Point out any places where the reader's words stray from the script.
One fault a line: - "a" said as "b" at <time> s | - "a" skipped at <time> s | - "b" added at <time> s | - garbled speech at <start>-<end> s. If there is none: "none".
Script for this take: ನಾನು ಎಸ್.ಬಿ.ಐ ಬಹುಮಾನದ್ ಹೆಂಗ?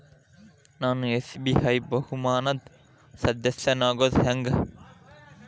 - "ಸದಸ್ಯನಾಗೋದ್" added at 3.1 s